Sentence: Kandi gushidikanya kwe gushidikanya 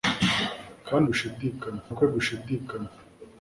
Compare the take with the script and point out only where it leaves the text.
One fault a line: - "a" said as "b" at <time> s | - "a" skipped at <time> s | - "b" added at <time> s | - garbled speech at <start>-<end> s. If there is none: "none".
none